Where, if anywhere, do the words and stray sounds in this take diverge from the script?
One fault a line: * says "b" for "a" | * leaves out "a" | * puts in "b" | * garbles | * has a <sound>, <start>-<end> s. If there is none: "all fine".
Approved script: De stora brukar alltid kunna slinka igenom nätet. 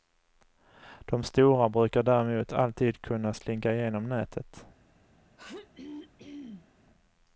* puts in "däremot"
* has a throat clearing, 5.4-6.7 s